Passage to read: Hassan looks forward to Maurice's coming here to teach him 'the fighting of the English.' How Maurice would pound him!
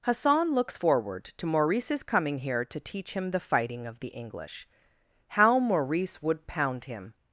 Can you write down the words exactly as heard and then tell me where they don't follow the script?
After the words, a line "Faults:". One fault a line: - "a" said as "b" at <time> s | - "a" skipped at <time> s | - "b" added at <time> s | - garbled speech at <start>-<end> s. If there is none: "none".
Hassan looks forward to Maurice's coming here to teach him 'the fighting of the English.' How Maurice would pound him!
Faults:
none